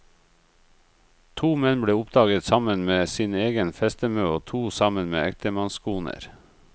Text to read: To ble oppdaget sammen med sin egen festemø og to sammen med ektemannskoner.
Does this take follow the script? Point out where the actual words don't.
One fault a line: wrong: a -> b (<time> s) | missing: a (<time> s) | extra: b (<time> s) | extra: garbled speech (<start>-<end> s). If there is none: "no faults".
extra: menn (1.6 s)